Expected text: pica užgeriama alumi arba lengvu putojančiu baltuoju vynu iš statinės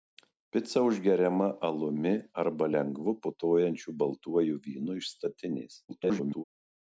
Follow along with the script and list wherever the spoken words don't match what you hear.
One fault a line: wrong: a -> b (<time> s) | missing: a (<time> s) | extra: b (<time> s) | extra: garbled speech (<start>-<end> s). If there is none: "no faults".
extra: garbled speech (5.9-6.4 s)